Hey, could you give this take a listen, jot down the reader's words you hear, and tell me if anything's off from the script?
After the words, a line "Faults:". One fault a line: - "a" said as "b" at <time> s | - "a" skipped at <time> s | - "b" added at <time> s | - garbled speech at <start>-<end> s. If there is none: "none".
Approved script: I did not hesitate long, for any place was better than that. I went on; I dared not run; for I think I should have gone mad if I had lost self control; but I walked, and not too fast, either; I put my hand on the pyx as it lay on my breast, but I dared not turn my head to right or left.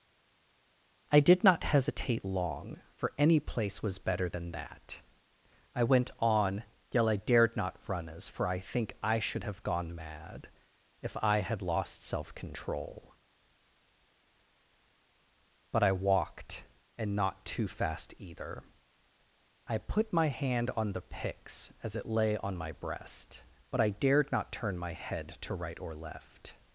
I did not hesitate long, for any place was better than that. I went on; yet I dared not run; as for I think I should have gone mad if I had lost self control; but I walked, and not too fast, either; I put my hand on the pyx as it lay on my breast, but I dared not turn my head to right or left.
Faults:
- "yet" added at 6.9 s
- "as" added at 8.1 s